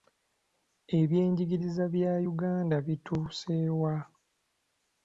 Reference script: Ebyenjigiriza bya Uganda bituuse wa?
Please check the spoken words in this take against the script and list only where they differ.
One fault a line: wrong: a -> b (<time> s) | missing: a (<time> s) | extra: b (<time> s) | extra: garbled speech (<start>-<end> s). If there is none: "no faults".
no faults